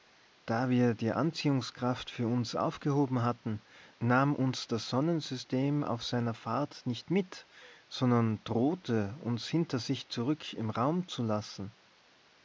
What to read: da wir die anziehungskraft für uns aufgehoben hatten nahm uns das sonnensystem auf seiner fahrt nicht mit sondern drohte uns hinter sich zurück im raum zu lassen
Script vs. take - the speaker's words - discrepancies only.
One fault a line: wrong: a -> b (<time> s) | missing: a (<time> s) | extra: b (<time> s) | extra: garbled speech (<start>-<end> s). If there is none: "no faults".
no faults